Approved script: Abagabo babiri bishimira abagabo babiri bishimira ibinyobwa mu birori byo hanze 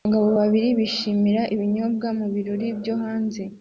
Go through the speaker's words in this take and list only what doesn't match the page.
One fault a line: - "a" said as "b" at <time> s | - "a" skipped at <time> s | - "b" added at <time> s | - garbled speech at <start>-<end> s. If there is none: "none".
- "abagabo babiri bishimira" skipped at 1.4 s